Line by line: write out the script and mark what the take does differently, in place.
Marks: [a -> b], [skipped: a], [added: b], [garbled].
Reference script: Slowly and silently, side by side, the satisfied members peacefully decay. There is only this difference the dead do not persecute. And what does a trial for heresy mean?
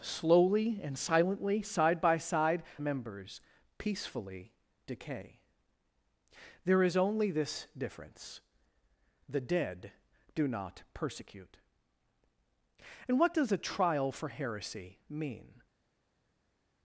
Slowly and silently, side by side, [skipped: the satisfied] members peacefully decay. There is only this difference the dead do not persecute. And what does a trial for heresy mean?